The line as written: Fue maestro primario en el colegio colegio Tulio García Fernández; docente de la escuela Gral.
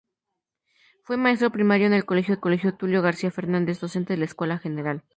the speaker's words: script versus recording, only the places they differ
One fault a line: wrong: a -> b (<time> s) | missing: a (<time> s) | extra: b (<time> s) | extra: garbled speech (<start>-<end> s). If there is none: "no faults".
no faults